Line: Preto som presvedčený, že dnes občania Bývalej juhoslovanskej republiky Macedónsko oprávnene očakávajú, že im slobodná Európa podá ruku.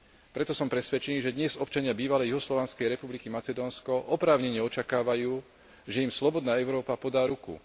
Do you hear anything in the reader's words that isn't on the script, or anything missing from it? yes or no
no